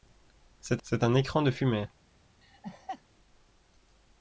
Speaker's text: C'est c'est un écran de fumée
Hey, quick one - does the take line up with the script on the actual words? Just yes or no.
yes